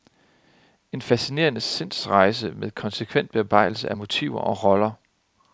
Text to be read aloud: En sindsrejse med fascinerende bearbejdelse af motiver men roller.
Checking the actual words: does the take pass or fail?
fail